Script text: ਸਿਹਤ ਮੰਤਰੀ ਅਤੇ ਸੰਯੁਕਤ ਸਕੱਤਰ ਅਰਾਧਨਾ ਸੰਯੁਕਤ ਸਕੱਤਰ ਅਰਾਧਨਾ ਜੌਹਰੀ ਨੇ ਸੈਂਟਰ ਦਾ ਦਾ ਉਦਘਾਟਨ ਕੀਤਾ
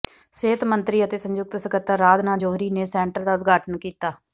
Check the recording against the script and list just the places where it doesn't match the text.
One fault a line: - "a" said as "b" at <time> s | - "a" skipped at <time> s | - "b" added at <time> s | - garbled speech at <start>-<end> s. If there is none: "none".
- "ਸੰਯੁਕਤ ਸਕੱਤਰ ਅਰਾਧਨਾ" skipped at 2.4 s
- "ਦਾ" skipped at 3.3 s